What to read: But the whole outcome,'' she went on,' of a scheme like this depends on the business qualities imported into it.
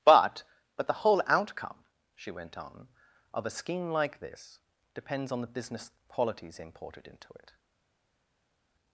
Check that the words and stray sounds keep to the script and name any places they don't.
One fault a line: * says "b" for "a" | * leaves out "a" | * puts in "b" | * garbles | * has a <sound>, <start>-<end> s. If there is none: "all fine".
* puts in "but"